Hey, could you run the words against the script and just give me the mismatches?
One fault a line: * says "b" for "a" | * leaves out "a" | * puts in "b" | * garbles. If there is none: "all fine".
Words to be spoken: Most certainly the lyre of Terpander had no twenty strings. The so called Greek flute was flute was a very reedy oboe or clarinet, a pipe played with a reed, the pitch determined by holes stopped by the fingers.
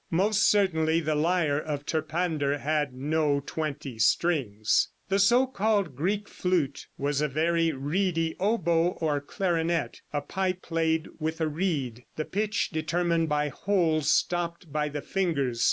* leaves out "flute was"